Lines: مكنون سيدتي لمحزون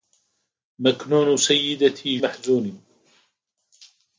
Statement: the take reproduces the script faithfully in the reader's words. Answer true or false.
true